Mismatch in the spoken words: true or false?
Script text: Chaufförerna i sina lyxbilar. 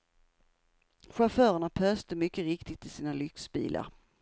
true